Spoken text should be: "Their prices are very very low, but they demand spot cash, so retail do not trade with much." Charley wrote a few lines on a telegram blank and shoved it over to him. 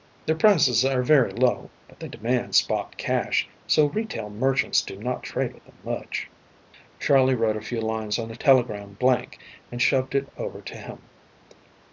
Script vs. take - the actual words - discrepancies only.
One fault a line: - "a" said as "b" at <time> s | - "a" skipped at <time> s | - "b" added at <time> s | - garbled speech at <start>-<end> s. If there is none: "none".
- "very" skipped at 1.3 s
- "merchants" added at 4.3 s
- "them" added at 5.6 s